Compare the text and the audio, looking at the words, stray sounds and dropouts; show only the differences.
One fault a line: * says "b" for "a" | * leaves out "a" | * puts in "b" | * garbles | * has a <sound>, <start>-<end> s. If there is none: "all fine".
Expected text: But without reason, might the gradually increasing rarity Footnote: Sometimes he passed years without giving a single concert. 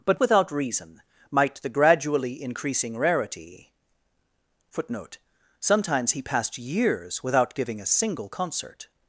all fine